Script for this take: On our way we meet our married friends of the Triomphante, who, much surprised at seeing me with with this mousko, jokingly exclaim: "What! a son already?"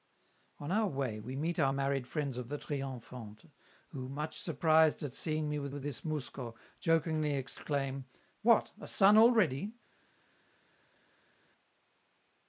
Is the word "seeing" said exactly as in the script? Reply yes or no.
yes